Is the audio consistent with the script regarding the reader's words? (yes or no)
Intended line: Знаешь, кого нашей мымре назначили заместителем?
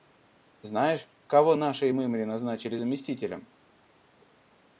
yes